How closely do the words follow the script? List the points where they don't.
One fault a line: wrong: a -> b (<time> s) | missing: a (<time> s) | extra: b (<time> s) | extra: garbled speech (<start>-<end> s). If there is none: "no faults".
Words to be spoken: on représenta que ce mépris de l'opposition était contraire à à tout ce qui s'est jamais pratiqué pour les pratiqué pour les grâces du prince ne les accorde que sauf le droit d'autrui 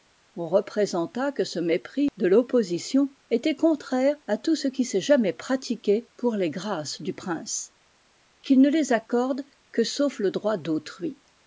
missing: à (4.4 s)
missing: pratiqué pour les (6.5 s)
extra: qu'il (8.4 s)